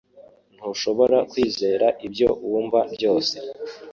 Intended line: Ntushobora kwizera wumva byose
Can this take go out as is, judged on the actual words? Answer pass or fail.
fail